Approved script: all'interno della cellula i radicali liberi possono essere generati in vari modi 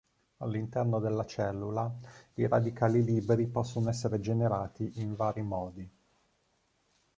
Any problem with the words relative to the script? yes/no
no